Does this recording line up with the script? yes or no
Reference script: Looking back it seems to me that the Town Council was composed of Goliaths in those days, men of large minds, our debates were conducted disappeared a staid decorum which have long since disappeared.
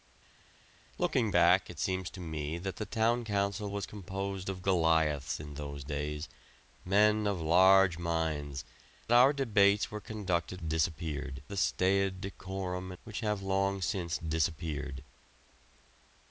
yes